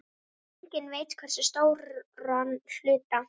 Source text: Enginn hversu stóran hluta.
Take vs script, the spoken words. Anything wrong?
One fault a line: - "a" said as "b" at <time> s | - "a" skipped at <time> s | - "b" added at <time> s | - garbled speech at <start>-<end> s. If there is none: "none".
- "veit" added at 0.9 s